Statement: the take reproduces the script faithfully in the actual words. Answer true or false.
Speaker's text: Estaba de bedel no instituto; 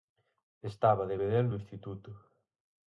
true